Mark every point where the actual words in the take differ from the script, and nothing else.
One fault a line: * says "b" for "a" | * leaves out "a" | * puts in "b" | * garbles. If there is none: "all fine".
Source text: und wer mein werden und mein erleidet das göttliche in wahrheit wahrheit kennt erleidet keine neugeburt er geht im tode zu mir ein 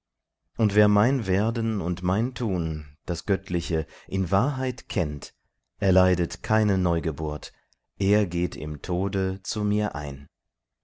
* says "tun" for "erleidet"
* leaves out "wahrheit"